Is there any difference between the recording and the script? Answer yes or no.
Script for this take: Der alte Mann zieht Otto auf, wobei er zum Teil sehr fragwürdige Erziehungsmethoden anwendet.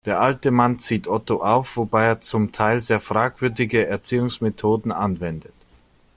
no